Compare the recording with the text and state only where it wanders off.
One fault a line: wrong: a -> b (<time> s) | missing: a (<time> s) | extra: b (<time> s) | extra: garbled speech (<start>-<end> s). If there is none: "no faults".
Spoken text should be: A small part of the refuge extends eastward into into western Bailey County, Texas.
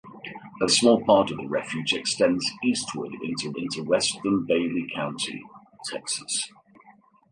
no faults